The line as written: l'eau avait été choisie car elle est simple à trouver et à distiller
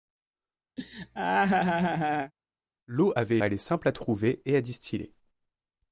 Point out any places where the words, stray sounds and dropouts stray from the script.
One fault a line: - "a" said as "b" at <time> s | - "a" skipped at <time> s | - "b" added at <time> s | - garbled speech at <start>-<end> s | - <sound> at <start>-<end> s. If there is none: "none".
- laugh at 0.8-2.3 s
- "été choisie car" skipped at 3.4 s